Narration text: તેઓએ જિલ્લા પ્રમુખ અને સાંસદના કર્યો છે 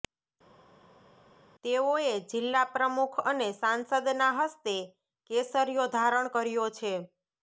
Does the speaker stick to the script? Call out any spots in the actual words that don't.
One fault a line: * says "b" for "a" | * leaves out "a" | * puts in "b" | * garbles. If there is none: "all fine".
* puts in "હસ્તે કેસરિયો ધારણ"